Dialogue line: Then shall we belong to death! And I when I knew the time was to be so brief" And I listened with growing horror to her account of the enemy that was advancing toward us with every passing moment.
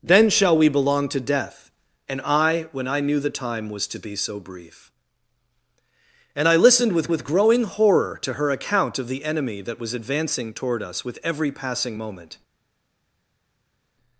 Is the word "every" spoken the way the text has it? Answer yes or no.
yes